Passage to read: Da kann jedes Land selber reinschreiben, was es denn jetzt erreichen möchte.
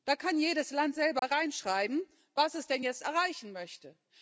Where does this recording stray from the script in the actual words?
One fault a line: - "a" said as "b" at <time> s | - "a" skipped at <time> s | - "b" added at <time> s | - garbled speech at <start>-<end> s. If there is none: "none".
none